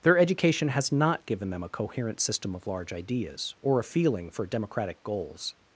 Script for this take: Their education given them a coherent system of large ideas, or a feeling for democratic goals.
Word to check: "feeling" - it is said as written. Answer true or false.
true